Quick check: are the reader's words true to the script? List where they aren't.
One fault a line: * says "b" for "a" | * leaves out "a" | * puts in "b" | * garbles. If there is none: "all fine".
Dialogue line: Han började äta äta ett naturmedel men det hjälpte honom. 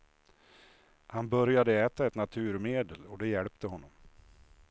* leaves out "äta"
* says "och" for "men"